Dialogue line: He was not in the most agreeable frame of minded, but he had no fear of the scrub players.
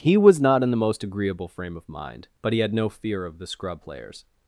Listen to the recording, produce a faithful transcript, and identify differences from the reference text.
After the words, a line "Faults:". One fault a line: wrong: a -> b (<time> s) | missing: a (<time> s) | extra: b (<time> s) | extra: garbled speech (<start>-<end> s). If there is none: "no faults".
He was not in the most agreeable frame of mind, but he had no fear of the scrub players.
Faults:
wrong: minded -> mind (1.9 s)